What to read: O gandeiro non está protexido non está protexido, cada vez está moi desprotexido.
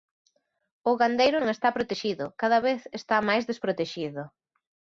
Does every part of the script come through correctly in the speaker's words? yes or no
no